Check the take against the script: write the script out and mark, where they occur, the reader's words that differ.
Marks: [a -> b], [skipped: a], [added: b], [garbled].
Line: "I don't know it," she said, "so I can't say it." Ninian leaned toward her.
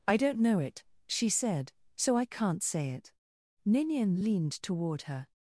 "I don't know it," she said, "so I can't say it." Ninian leaned toward her.